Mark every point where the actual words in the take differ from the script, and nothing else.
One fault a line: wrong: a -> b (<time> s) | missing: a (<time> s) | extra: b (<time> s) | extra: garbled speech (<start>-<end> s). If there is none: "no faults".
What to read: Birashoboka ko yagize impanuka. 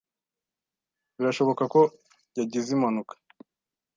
no faults